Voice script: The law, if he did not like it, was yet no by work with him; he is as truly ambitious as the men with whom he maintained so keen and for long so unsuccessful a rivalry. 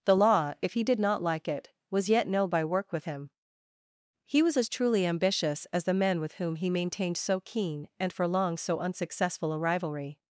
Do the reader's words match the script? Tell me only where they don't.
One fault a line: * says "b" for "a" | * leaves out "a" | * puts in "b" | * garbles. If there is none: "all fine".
* says "was" for "is"